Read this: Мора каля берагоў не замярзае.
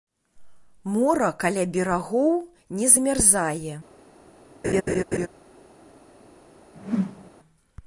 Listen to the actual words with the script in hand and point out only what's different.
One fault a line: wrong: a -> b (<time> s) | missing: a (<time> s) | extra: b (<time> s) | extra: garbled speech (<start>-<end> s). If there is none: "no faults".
no faults